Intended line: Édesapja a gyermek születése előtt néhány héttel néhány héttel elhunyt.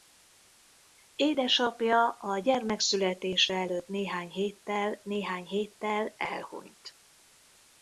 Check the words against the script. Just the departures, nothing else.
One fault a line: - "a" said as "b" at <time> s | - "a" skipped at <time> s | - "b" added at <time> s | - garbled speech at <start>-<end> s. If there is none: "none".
none